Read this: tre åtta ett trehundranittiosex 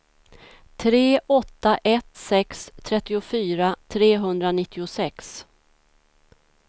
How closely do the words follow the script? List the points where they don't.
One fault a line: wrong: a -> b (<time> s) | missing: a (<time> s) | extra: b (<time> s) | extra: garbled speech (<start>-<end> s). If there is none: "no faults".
extra: sex trettiofyra (2.1 s)